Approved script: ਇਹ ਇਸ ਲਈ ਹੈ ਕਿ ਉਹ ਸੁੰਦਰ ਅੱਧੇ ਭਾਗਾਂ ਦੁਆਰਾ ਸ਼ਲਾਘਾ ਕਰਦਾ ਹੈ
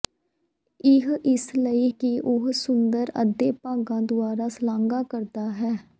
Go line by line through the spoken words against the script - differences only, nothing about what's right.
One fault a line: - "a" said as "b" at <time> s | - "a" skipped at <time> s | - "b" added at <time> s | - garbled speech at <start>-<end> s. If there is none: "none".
- "ਹੈ" skipped at 1.9 s